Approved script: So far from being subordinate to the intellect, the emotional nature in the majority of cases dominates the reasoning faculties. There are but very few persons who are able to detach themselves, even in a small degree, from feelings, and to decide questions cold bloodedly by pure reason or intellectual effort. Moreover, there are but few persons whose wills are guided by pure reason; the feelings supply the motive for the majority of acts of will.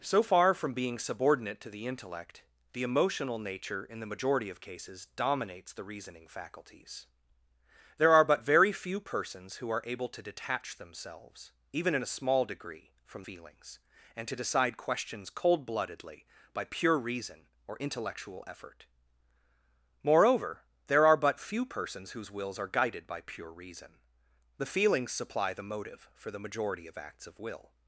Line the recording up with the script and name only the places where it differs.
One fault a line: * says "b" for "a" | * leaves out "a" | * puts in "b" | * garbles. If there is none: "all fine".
all fine